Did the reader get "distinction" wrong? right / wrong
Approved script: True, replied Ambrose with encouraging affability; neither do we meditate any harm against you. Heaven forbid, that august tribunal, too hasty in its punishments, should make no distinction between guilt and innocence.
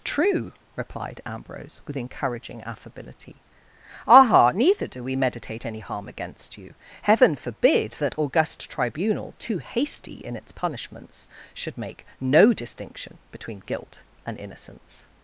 right